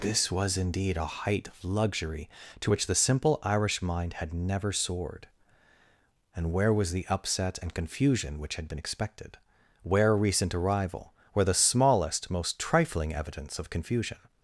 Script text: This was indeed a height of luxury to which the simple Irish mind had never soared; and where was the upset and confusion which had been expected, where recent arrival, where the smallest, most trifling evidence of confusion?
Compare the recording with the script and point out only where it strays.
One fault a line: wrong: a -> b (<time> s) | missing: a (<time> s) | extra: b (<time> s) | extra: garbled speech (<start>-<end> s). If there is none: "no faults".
no faults